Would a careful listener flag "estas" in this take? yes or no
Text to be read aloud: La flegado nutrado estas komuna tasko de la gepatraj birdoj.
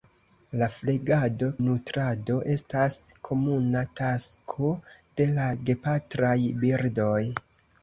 no